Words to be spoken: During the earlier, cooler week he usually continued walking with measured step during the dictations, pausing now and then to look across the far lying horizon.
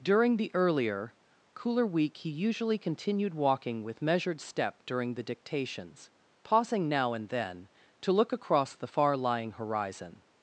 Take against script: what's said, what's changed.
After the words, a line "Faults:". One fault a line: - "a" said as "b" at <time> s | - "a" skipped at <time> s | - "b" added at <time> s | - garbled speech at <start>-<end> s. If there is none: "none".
During the earlier, cooler week he usually continued walking with measured step during the dictations, pausing now and then to look across the far lying horizon.
Faults:
none